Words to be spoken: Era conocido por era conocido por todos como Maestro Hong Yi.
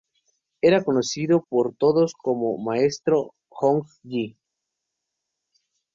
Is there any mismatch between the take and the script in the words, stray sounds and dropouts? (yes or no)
yes